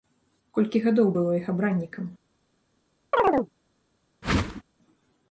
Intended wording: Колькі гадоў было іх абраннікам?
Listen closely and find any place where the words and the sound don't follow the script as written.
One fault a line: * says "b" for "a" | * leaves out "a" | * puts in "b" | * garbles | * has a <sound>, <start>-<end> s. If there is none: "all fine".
* has a chirp, 3.1-3.5 s
* has a whoosh, 4.2-4.6 s